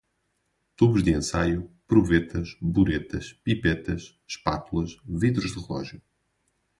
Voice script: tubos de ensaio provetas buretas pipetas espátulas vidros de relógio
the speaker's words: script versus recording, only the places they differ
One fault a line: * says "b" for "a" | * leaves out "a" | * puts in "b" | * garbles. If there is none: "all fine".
all fine